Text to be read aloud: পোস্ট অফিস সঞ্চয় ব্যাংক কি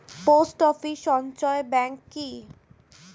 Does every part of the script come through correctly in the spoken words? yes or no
yes